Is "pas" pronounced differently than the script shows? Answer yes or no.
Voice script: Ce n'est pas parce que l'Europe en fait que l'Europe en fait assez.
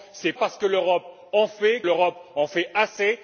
yes